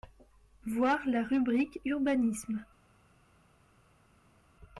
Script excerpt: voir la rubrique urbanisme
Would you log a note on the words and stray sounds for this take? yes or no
no